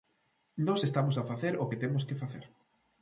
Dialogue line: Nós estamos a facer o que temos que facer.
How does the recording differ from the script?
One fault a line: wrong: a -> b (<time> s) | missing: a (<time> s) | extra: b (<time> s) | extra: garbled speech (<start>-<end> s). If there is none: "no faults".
no faults